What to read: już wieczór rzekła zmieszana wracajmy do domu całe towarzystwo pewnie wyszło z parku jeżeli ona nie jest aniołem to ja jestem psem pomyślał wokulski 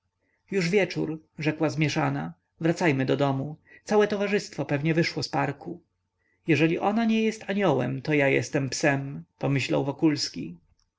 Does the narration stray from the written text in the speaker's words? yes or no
no